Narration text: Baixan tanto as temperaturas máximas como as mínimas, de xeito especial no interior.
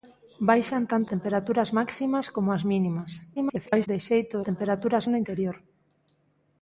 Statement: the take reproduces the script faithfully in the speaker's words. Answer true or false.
false